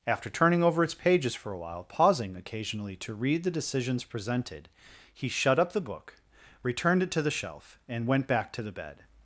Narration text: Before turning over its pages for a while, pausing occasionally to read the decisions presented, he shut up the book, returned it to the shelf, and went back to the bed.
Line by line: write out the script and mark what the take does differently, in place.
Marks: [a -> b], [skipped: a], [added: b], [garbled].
[Before -> After] turning over its pages for a while, pausing occasionally to read the decisions presented, he shut up the book, returned it to the shelf, and went back to the bed.